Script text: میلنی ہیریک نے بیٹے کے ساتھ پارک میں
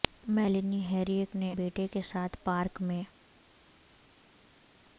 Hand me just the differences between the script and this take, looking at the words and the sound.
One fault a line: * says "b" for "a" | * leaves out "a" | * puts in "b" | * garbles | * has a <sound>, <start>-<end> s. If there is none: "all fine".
all fine